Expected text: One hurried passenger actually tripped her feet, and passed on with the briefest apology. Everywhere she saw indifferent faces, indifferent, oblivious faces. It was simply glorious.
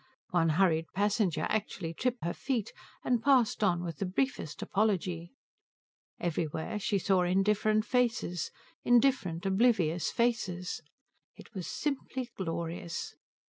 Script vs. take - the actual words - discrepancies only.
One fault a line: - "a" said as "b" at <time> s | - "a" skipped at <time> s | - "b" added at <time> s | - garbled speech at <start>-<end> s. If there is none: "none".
none